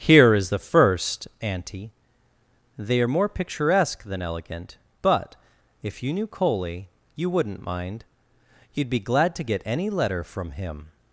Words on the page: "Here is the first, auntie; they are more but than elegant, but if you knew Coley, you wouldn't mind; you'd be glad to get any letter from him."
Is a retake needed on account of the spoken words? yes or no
yes